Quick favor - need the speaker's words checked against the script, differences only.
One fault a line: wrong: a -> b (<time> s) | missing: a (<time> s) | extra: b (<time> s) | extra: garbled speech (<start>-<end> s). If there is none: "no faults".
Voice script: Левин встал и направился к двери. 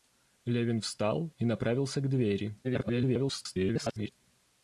extra: garbled speech (2.6-4.1 s)